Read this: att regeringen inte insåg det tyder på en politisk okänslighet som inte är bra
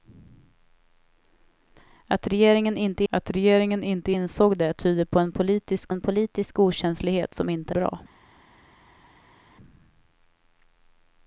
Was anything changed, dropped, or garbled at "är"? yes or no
yes